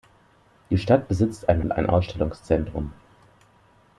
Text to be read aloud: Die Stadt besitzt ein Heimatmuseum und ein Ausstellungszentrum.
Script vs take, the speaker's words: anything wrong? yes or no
yes